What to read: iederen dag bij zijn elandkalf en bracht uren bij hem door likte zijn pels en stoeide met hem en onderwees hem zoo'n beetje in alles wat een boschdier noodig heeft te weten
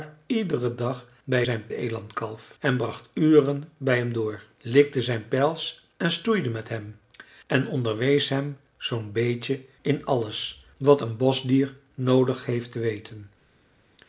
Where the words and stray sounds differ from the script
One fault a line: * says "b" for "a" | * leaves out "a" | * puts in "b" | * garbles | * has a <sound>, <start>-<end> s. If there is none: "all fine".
all fine